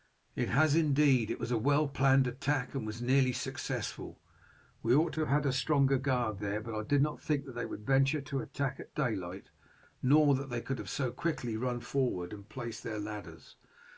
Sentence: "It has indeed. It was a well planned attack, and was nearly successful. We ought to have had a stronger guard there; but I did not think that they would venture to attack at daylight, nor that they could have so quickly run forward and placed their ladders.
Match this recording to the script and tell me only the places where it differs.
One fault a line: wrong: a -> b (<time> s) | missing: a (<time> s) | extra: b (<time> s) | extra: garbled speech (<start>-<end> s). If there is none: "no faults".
no faults